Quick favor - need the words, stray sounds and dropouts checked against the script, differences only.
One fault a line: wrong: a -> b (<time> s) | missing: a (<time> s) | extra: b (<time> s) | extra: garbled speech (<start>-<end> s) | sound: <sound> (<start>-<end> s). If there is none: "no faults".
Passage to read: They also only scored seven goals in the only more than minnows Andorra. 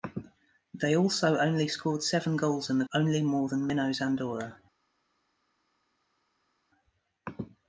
no faults